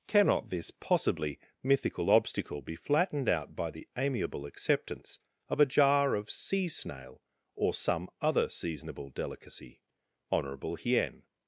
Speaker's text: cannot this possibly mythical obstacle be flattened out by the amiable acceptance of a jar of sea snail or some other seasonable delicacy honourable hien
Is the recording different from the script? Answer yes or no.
no